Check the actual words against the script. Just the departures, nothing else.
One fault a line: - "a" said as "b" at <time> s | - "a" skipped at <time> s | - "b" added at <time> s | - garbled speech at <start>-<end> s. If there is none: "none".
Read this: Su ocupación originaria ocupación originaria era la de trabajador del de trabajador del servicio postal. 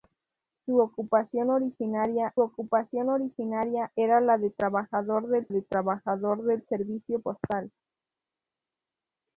none